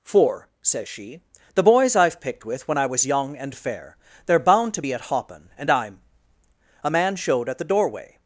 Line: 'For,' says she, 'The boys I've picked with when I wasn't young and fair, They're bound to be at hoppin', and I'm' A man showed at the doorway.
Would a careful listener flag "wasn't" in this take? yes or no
yes